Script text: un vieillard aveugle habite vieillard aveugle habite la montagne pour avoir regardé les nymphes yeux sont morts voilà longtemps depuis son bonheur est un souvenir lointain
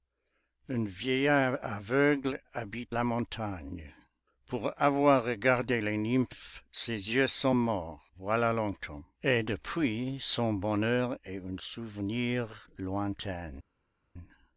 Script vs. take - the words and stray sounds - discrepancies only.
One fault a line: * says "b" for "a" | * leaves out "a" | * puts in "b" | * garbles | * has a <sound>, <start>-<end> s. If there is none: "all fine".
* leaves out "vieillard aveugle habite"
* puts in "ses"
* puts in "et"